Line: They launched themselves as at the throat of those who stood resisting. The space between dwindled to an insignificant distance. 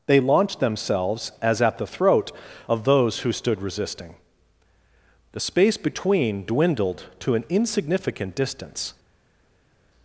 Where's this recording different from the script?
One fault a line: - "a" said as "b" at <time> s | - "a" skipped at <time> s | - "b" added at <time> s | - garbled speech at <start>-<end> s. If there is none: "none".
none